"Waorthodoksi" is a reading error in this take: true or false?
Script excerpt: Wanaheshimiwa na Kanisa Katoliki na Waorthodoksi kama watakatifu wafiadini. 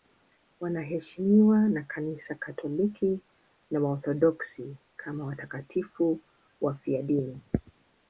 false